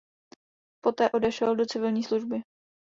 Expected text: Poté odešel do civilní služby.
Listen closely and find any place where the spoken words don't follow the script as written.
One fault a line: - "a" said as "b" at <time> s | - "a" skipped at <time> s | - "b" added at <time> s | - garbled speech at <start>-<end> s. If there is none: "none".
none